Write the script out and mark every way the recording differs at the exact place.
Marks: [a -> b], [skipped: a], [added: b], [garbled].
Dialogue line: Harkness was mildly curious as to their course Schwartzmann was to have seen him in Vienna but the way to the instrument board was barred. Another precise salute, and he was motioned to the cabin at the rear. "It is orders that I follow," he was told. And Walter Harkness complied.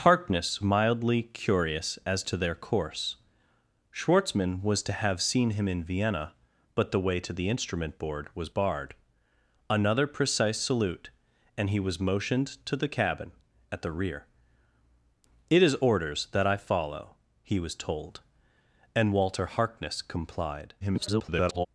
Harkness [skipped: was] mildly curious as to their course Schwartzmann was to have seen him in Vienna but the way to the instrument board was barred. Another precise salute, and he was motioned to the cabin at the rear. "It is orders that I follow," he was told. And Walter Harkness complied. [garbled]